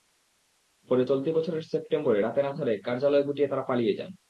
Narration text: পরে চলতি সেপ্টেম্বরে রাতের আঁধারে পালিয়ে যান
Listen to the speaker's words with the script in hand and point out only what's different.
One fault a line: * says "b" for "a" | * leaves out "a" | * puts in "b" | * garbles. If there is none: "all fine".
* puts in "বছরের"
* puts in "কার্যালয় গুটিয়ে তাঁরা"